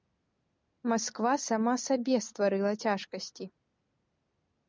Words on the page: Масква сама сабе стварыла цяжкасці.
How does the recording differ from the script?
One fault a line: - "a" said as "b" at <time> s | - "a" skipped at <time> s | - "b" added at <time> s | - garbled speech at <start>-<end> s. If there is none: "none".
none